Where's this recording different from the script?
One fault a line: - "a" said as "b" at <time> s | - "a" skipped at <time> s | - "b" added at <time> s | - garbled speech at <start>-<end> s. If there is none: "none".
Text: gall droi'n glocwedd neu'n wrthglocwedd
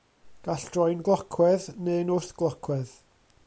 none